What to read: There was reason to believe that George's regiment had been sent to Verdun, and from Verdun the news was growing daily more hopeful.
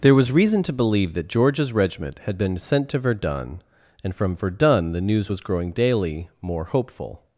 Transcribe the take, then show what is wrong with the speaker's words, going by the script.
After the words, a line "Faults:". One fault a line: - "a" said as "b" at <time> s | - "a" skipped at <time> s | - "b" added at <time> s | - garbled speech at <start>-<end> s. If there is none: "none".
There was reason to believe that George's regiment had been sent to Verdun, and from Verdun the news was growing daily more hopeful.
Faults:
none